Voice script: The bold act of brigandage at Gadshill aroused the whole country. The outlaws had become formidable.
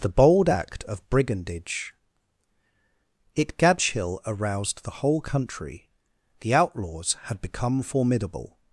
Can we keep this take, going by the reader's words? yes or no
no